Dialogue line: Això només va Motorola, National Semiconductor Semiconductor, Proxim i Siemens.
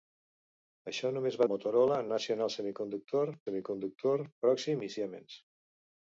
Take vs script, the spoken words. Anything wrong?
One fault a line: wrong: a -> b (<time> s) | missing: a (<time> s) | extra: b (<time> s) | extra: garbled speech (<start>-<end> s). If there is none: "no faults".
no faults